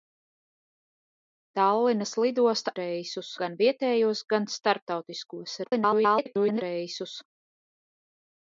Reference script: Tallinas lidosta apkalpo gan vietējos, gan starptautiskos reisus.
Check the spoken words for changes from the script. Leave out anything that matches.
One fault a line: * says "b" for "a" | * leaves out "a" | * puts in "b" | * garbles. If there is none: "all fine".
* says "reisus" for "apkalpo"
* garbles